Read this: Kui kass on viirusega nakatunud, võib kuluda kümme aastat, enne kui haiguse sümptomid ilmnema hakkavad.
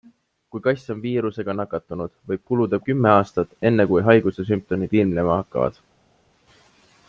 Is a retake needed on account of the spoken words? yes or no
no